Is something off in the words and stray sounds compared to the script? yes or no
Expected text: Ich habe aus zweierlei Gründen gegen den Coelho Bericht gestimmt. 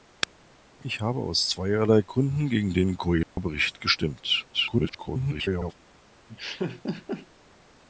yes